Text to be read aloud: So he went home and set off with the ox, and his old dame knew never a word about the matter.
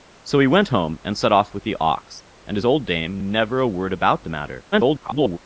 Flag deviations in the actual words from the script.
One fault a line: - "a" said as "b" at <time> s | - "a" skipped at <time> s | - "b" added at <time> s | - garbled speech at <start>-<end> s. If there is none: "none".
- "knew" skipped at 3.2 s
- garbled speech at 4.7-5.4 s